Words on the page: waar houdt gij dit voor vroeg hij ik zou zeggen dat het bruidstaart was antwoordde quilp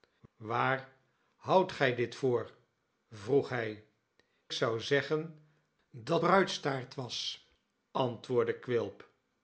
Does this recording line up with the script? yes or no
no